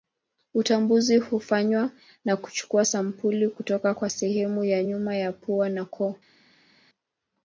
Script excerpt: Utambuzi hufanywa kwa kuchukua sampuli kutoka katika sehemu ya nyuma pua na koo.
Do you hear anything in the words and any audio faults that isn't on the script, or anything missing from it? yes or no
yes